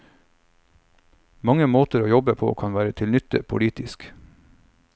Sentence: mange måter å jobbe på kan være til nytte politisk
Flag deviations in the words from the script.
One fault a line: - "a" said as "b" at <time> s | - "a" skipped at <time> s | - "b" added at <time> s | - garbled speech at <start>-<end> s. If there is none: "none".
none